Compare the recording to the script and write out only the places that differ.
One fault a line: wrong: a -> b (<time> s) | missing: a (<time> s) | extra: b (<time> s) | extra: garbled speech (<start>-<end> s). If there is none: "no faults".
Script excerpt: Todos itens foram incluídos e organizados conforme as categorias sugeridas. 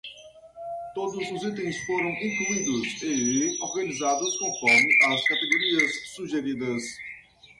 extra: os (1.3 s)